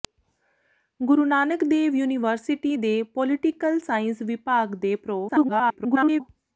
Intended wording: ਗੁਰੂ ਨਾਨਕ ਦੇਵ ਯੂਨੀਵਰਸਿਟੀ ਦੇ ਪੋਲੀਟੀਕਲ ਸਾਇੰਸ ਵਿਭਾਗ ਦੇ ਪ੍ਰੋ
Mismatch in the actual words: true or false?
true